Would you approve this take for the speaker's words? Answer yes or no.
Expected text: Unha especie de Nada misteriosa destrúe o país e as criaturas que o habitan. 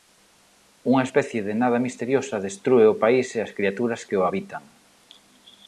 yes